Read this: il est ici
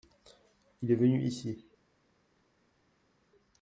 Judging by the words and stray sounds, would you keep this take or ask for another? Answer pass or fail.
fail